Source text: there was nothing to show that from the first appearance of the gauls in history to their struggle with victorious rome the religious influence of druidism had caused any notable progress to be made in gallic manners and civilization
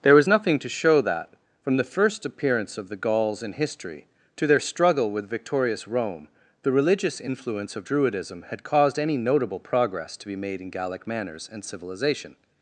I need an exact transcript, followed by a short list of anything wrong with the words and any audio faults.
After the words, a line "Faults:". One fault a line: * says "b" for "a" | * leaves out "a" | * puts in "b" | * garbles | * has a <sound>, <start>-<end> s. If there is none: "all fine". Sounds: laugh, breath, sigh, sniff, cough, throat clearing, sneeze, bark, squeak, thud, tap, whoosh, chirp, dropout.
there was nothing to show that from the first appearance of the gauls in history to their struggle with victorious rome the religious influence of druidism had caused any notable progress to be made in gallic manners and civilization
Faults:
all fine